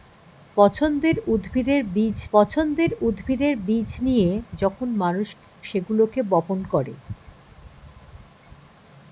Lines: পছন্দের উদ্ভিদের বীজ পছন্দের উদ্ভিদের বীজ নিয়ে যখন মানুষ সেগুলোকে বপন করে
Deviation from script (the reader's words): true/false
false